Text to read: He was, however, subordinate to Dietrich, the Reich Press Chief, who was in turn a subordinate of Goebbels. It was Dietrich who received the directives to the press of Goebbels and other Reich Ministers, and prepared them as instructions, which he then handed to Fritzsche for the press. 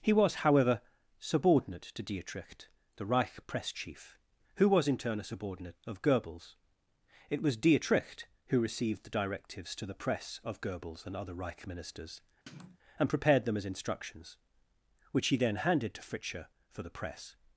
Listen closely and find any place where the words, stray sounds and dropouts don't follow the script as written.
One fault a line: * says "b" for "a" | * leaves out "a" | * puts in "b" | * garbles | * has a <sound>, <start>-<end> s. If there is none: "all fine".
* has a sniff, 12.5-12.8 s